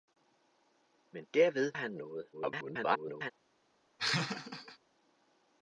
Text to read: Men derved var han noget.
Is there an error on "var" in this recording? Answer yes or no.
yes